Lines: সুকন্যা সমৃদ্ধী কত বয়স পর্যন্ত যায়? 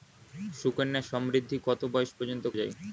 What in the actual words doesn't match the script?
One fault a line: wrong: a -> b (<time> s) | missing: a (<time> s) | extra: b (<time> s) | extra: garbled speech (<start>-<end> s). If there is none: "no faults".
no faults